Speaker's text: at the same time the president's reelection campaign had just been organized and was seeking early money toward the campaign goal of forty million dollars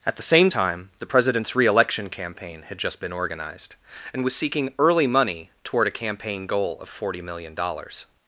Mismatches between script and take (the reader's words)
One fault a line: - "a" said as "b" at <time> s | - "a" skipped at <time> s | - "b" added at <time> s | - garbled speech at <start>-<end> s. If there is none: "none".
- "the" said as "a" at 5.9 s